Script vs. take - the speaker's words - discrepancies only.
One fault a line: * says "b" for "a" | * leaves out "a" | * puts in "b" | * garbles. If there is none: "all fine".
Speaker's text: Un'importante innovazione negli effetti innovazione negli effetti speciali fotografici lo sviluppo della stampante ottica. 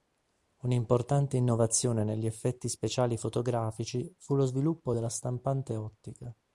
* leaves out "innovazione negli effetti"
* puts in "fu"